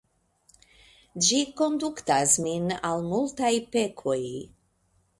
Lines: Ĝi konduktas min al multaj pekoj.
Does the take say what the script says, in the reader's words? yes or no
yes